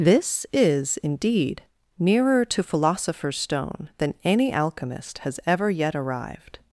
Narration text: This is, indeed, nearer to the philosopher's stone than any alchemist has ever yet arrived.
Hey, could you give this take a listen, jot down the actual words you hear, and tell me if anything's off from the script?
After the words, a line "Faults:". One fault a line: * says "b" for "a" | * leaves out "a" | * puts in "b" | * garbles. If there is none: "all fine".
This is, indeed, nearer to philosopher's stone than any alchemist has ever yet arrived.
Faults:
* leaves out "the"